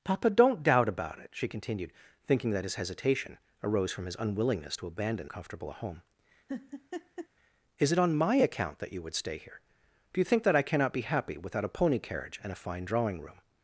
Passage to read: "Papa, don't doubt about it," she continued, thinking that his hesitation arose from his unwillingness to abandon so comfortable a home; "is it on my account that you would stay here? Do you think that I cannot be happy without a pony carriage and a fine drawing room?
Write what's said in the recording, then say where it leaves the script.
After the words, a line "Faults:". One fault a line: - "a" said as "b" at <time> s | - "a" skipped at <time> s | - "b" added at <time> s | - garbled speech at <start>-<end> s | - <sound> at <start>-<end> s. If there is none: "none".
"Papa, don't doubt about it," she continued, thinking that his hesitation arose from his unwillingness to abandon comfortable a home; "is it on my account that you would stay here? Do you think that I cannot be happy without a pony carriage and a fine drawing room?
Faults:
- "so" skipped at 5.3 s
- laugh at 6.5-7.3 s